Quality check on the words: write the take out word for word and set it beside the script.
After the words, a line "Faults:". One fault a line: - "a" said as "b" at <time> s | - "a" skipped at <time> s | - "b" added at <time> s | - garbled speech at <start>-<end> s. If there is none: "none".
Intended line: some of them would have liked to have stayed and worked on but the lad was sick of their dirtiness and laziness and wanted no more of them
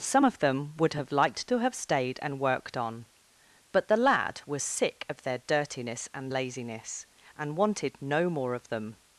some of them would have liked to have stayed and worked on but the lad was sick of their dirtiness and laziness and wanted no more of them
Faults:
none